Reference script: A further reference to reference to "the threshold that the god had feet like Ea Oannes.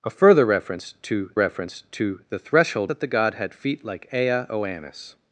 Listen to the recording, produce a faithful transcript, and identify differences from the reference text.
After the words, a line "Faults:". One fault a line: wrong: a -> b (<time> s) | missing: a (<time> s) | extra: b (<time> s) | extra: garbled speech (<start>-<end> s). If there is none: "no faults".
A further reference to reference to "the threshold that the god had feet like Ea Oannes.
Faults:
no faults